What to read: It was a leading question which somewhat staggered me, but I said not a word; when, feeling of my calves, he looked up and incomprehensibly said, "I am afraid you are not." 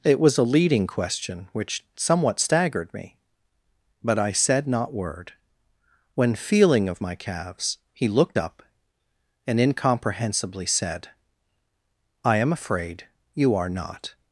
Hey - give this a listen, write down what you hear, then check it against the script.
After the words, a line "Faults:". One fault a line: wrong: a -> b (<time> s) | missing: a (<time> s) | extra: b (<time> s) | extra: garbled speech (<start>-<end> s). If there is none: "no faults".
It was a leading question which somewhat staggered me, but I said not word; when, feeling of my calves, he looked up and incomprehensibly said, "I am afraid you are not."
Faults:
missing: a (4.9 s)